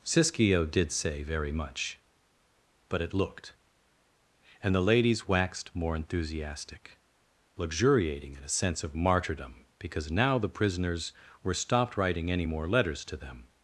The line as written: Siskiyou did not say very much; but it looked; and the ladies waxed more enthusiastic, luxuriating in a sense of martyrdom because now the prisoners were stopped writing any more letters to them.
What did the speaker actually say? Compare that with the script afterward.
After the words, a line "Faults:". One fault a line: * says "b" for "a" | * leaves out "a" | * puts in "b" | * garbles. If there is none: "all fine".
Siskiyou did say very much; but it looked; and the ladies waxed more enthusiastic, luxuriating in a sense of martyrdom because now the prisoners were stopped writing any more letters to them.
Faults:
* leaves out "not"